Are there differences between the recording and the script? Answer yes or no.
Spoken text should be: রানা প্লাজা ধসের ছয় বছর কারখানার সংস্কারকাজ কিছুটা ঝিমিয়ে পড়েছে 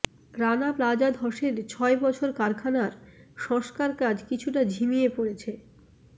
no